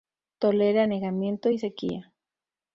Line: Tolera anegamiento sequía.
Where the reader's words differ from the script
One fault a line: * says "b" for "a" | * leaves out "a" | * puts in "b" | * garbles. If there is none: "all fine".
* puts in "y"